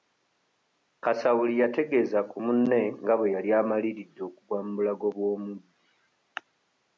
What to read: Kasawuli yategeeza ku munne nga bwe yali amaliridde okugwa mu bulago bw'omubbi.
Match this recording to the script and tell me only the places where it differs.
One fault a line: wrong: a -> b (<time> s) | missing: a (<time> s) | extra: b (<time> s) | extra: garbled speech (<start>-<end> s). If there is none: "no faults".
no faults